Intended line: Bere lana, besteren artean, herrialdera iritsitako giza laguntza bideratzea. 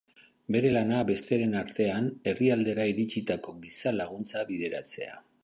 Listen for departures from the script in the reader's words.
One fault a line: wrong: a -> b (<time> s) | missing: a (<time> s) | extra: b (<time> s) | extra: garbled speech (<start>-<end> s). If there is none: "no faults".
no faults